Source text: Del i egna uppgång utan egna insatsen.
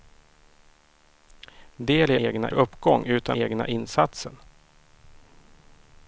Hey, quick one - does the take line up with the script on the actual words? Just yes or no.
yes